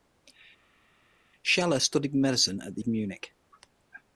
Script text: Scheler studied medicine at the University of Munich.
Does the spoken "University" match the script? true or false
false